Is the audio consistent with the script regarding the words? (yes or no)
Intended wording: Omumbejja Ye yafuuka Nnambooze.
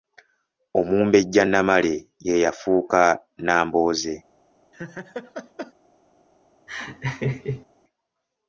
no